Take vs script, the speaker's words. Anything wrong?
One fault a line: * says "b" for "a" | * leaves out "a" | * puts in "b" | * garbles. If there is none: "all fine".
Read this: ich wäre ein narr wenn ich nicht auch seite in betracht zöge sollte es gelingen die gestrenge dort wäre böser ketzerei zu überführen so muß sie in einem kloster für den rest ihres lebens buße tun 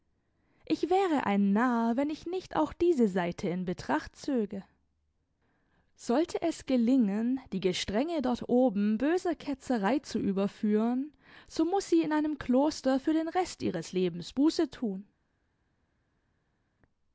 * puts in "diese"
* says "oben" for "wäre"